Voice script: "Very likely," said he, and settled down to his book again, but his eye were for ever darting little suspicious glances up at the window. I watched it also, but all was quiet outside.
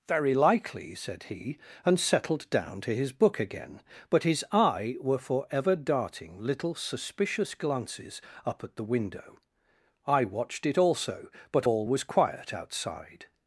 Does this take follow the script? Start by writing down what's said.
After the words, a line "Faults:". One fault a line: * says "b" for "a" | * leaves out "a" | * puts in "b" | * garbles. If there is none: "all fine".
"Very likely," said he, and settled down to his book again, but his eye were for ever darting little suspicious glances up at the window. I watched it also, but all was quiet outside.
Faults:
all fine